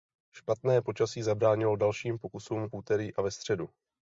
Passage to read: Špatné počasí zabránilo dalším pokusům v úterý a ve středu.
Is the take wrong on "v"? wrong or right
wrong